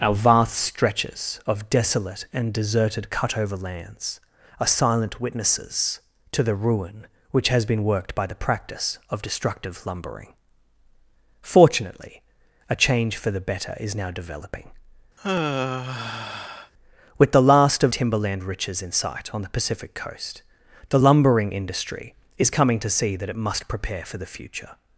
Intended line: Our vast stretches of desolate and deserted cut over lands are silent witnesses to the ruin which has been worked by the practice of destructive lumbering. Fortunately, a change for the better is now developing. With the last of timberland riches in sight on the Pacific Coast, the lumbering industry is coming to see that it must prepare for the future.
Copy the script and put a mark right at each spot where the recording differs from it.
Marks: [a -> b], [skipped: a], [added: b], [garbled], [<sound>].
Our vast stretches of desolate and deserted cut over lands are silent witnesses to the ruin which has been worked by the practice of destructive lumbering. Fortunately, a change for the better is now developing. [sigh] With the last of timberland riches in sight on the Pacific Coast, the lumbering industry is coming to see that it must prepare for the future.